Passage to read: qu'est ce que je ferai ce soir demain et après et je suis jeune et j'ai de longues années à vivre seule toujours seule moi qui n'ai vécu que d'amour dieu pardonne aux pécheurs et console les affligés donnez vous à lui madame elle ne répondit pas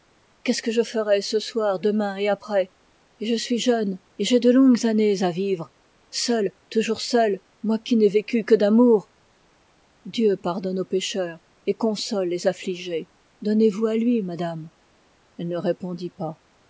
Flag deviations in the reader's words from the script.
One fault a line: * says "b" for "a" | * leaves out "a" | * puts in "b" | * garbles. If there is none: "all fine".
all fine